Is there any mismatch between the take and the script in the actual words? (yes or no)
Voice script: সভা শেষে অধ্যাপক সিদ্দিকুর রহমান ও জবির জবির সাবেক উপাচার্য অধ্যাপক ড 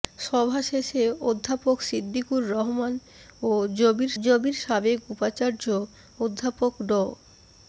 no